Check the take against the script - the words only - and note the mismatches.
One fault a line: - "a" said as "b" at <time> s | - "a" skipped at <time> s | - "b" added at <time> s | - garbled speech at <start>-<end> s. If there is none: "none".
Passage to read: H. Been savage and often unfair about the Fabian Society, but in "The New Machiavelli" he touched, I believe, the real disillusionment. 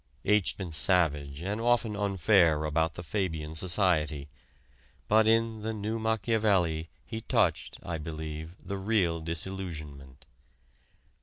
none